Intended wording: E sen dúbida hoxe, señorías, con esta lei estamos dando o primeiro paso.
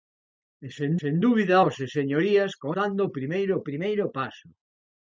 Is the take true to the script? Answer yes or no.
no